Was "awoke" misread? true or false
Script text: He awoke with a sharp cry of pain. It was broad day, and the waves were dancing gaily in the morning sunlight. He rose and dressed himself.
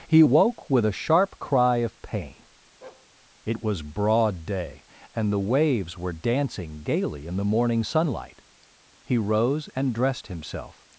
true